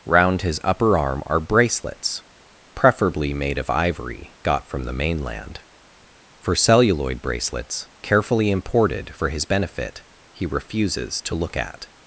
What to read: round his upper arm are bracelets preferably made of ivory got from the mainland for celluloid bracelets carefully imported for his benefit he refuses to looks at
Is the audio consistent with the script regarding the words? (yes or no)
no